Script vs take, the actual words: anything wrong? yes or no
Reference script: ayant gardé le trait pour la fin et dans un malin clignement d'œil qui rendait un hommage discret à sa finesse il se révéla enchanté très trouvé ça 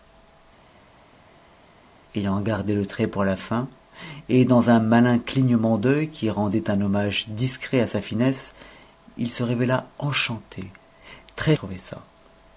no